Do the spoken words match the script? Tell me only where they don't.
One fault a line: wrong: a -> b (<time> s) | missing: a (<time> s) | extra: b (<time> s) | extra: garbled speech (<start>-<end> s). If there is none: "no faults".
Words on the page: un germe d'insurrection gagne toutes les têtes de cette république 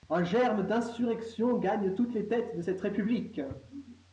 no faults